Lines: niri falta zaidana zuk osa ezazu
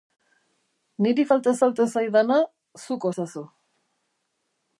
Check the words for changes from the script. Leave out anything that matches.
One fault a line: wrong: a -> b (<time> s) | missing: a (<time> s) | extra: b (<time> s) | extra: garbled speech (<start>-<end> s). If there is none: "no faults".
extra: falta (1.6 s)
missing: osa (3.1 s)